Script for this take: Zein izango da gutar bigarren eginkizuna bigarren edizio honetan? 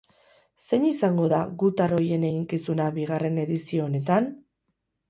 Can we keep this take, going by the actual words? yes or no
no